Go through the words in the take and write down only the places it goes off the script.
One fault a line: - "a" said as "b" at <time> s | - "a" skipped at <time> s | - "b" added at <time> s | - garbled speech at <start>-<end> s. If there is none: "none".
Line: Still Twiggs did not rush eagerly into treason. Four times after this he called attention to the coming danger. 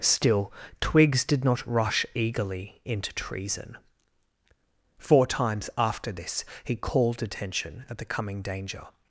- "to" said as "at" at 7.9 s